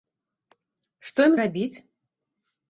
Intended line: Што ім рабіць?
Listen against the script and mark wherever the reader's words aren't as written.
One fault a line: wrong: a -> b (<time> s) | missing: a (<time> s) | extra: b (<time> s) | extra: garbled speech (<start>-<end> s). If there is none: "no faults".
no faults